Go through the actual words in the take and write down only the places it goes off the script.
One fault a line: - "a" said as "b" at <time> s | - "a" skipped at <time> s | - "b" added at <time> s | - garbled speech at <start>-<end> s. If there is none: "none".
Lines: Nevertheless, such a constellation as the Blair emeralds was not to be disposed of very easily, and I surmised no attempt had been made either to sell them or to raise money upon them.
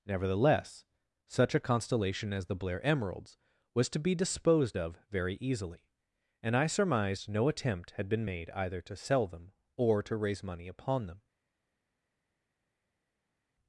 - "not" skipped at 3.9 s